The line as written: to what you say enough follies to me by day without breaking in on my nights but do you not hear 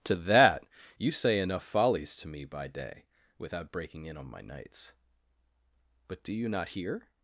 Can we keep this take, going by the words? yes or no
no